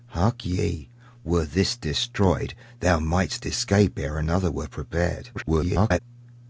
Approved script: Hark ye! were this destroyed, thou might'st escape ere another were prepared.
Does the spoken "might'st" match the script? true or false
true